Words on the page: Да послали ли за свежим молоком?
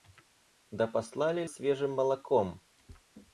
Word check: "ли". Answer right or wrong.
wrong